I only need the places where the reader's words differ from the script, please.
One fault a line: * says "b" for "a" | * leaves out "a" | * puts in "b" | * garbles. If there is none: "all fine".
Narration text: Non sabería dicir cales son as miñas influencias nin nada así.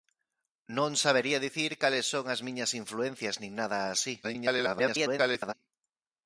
* garbles